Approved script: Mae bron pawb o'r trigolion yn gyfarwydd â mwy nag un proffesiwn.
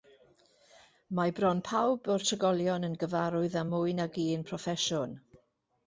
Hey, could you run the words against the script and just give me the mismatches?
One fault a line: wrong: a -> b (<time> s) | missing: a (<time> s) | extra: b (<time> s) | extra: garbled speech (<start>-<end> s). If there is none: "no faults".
no faults